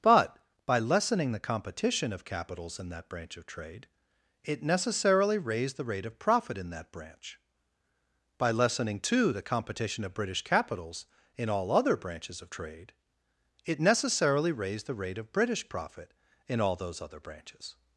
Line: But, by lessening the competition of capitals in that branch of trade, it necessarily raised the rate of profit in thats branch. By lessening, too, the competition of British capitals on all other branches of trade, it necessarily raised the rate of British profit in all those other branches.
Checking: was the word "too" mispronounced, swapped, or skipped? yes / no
no